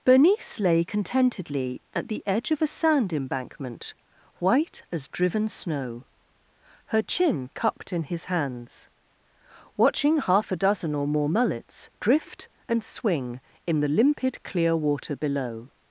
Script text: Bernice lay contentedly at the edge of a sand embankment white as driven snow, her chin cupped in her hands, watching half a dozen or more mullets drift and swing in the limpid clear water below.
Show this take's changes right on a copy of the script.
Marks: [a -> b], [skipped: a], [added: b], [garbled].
Bernice lay contentedly at the edge of a sand embankment white as driven snow, her chin cupped in [her -> his] hands, watching half a dozen or more mullets drift and swing in the limpid clear water below.